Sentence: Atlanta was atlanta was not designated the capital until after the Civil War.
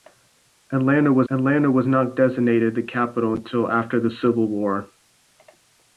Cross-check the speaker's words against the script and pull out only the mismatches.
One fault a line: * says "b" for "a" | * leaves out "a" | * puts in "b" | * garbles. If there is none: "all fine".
all fine